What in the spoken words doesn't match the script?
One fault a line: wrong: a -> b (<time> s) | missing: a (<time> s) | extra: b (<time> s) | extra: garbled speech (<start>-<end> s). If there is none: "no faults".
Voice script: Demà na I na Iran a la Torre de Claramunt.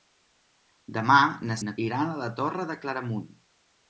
no faults